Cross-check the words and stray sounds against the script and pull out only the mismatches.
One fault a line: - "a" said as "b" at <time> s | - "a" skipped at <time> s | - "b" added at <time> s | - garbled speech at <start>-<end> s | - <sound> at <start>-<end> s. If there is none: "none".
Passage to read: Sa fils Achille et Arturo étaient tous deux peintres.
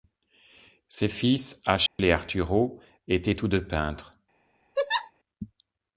- "Sa" said as "Ses" at 0.9 s
- dropout at 1.9-2.0 s
- laugh at 4.8-5.1 s